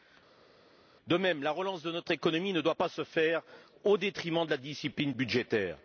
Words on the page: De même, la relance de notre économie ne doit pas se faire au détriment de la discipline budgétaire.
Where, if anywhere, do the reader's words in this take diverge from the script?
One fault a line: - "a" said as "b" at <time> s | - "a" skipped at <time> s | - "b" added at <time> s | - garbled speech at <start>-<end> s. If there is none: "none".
none